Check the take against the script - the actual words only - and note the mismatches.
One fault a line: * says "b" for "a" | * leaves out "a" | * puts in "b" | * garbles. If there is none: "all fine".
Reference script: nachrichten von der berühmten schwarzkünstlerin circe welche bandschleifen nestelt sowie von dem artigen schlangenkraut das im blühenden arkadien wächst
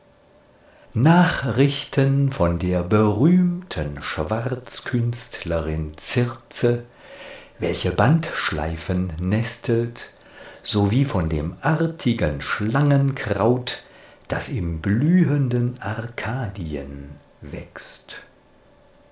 all fine